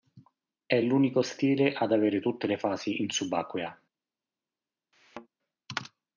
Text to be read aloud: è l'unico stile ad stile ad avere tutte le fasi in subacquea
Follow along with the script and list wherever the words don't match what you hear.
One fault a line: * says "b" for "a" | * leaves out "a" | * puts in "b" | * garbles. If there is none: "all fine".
* leaves out "stile ad"